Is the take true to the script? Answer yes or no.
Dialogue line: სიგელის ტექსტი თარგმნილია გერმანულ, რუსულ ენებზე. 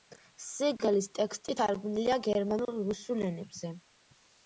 yes